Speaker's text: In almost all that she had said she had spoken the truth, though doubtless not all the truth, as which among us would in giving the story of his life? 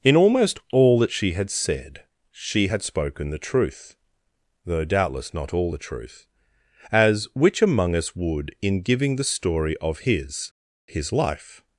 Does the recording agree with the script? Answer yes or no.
no